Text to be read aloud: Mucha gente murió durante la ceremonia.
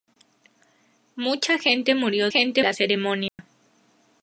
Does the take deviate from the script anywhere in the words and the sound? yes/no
yes